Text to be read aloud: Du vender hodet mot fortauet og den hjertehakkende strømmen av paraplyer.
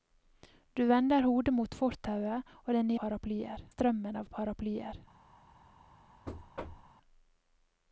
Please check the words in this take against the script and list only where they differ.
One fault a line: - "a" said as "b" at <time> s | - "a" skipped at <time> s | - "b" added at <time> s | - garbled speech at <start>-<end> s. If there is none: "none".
- "hjertehakkende" said as "paraplyer" at 3.0 s